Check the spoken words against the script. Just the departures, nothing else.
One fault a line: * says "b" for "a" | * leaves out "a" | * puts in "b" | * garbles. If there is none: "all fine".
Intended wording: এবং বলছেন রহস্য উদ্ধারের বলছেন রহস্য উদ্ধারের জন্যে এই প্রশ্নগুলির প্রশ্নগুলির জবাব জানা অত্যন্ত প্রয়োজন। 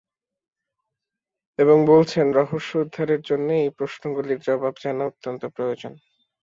* leaves out "বলছেন রহস্য উদ্ধারের"
* leaves out "প্রশ্নগুলির"